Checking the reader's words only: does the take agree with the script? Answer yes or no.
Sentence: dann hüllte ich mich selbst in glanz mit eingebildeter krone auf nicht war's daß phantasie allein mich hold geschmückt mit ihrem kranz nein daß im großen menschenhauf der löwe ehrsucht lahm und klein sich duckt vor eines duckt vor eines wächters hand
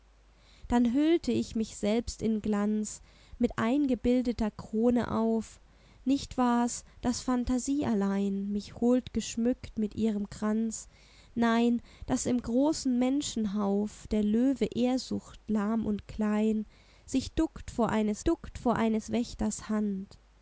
yes